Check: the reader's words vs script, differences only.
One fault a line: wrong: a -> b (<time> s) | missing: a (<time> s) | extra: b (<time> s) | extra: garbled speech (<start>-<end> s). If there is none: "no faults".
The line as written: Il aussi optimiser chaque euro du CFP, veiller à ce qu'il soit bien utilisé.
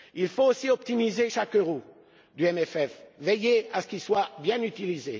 extra: faut (0.3 s)